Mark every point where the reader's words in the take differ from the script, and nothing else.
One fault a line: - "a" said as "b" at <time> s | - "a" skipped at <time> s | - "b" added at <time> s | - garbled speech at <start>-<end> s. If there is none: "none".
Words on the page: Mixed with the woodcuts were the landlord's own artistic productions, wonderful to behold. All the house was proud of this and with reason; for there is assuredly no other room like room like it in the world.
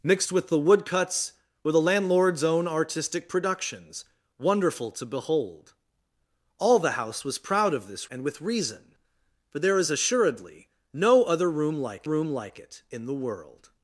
none